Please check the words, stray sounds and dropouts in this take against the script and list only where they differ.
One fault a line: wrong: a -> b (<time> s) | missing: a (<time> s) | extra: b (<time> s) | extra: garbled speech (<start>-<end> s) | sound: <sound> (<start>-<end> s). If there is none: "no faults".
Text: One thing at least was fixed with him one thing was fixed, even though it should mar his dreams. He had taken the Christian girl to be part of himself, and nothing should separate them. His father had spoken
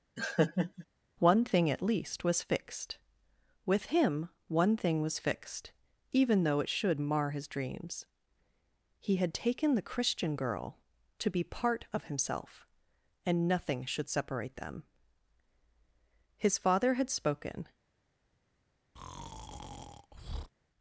sound: laugh (0.2-0.9 s)
sound: breath (19.0-20.5 s)